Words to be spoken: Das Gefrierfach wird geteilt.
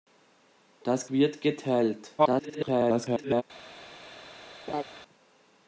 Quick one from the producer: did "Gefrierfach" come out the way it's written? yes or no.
no